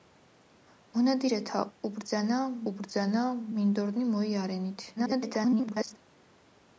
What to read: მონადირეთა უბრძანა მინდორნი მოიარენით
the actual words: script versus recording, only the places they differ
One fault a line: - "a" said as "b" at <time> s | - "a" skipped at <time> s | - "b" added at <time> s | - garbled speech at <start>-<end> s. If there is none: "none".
- "უბრძანა" added at 2.7 s
- garbled speech at 5.0-6.0 s